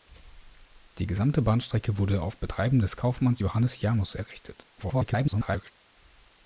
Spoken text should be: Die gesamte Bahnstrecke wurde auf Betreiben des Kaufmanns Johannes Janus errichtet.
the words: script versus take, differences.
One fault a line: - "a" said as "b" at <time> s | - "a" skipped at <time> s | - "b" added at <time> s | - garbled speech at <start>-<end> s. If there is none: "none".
- garbled speech at 4.8-5.7 s